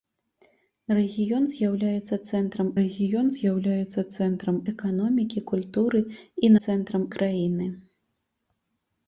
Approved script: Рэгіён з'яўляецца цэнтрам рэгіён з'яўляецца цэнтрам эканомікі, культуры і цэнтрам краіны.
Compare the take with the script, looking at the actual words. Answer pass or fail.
pass